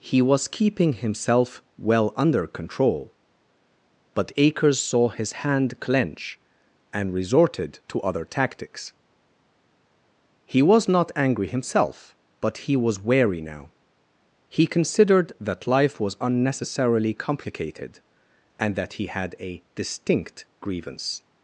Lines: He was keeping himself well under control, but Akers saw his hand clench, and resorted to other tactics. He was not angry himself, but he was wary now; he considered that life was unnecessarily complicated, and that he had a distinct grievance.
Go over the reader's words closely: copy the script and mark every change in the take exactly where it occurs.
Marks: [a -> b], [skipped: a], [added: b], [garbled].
He was keeping himself well under control, but Akers saw his hand clench, and resorted to other tactics. He was not angry himself, but he was wary now; he considered that life was unnecessarily complicated, and that he had a distinct grievance.